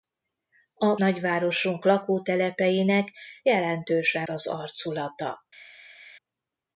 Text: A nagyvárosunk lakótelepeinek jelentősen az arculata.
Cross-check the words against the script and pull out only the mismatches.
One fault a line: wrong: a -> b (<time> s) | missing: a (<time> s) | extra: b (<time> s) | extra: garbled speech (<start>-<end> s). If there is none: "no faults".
no faults